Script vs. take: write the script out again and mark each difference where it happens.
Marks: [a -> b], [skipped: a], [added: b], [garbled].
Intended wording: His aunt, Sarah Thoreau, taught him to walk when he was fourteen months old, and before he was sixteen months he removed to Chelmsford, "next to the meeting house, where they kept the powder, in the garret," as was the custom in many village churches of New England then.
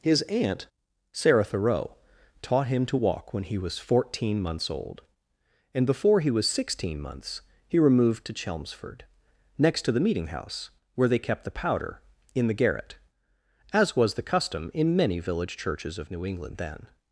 His aunt, Sarah Thoreau, taught him to walk when he was fourteen months old, and before he was sixteen months he removed to Chelmsford, "next to the meeting house, where they kept the powder, in the garret," as was the custom in many village churches of New England then.